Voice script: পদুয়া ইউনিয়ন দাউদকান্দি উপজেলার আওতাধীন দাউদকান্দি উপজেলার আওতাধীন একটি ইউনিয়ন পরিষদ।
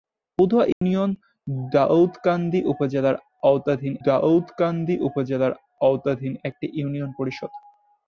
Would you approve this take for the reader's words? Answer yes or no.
yes